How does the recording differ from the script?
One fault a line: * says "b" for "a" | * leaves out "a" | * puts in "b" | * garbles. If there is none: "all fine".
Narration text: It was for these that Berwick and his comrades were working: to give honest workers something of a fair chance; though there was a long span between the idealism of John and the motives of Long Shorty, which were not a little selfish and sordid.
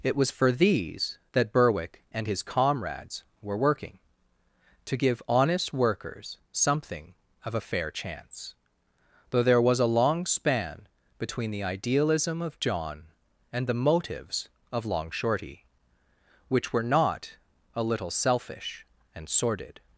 all fine